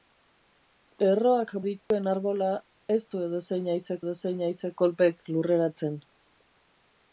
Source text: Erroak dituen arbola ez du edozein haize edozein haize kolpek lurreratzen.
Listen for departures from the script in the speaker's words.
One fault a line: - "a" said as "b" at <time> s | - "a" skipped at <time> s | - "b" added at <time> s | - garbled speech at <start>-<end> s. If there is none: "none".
none